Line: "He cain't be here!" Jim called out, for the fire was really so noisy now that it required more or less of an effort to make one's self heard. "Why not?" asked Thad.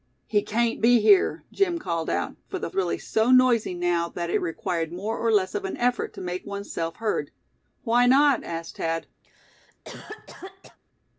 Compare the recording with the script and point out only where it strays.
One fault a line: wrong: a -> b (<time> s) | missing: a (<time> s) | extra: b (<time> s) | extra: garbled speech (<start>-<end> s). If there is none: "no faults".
missing: fire was (2.7 s)